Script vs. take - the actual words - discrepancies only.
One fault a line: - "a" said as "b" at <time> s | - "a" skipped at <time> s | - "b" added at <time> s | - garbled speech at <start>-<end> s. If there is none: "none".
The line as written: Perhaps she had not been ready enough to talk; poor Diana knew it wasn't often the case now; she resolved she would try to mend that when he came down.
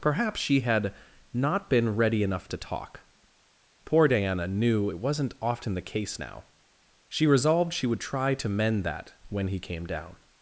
none